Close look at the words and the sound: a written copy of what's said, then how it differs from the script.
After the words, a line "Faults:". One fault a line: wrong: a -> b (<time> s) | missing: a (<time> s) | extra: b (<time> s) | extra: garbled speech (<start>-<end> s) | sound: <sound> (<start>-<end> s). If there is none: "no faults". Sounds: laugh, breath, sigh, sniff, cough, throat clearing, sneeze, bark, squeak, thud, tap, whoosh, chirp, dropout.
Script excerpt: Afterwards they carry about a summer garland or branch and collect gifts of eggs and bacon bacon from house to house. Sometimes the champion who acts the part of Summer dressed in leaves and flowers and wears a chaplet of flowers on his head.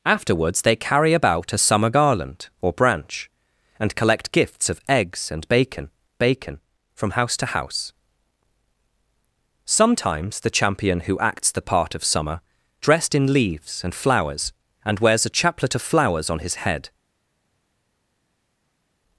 Afterwards they carry about a summer garland or branch and collect gifts of eggs and bacon bacon from house to house. Sometimes the champion who acts the part of Summer dressed in leaves and flowers and wears a chaplet of flowers on his head.
Faults:
no faults